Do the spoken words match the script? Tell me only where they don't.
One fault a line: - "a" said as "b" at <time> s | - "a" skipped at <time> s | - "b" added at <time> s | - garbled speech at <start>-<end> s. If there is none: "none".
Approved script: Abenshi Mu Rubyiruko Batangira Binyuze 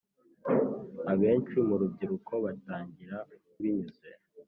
none